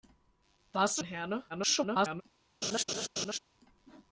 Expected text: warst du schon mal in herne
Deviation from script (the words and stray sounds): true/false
true